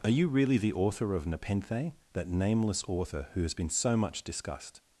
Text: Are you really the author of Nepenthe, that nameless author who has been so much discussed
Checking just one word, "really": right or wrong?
right